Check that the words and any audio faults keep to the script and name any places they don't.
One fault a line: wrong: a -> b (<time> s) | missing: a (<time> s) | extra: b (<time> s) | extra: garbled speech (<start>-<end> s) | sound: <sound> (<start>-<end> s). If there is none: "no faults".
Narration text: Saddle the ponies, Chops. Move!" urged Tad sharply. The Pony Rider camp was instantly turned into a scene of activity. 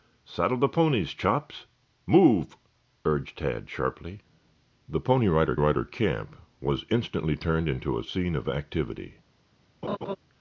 extra: Rider (5.5 s)
sound: laugh (9.8-10.2 s)